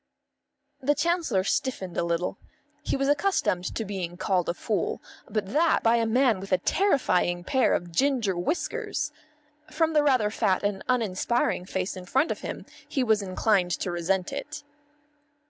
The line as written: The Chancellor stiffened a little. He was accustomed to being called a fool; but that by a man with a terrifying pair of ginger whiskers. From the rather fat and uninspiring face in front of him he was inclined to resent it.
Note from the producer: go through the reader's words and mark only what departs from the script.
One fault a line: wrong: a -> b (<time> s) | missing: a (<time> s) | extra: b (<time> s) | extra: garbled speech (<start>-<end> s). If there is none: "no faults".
no faults